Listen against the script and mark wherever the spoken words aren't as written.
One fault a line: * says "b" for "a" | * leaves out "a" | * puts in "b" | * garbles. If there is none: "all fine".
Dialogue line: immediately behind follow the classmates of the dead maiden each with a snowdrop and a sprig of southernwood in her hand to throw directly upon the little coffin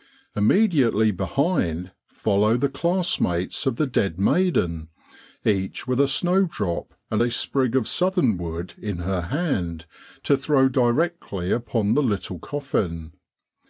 all fine